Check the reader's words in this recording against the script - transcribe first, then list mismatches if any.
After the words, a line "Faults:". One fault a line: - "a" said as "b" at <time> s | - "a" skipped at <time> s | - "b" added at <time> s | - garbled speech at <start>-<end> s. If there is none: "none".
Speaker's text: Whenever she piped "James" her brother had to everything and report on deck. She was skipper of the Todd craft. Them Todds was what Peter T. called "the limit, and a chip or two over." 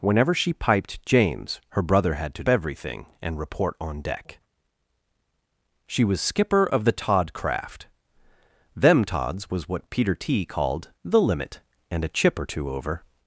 Whenever she piped "James" her brother had to everything and report on deck. She was skipper of the Todd craft. Them Todds was what Peter T. called "the limit, and a chip or two over."
Faults:
none